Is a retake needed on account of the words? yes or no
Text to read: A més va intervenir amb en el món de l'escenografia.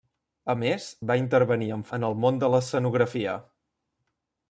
no